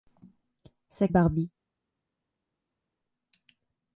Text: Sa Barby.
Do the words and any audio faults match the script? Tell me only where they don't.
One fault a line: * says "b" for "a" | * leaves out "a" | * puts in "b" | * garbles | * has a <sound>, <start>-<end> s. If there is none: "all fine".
all fine